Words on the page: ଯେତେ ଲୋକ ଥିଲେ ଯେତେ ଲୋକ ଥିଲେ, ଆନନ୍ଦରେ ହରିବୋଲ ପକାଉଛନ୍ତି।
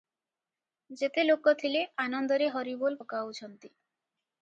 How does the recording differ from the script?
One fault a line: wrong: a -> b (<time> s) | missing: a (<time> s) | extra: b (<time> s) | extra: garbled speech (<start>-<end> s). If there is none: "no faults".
missing: ଯେତେ ଲୋକ ଥିଲେ (1.9 s)